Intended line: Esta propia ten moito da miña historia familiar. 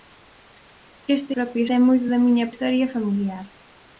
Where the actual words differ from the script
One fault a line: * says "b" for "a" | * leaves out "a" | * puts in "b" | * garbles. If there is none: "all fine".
all fine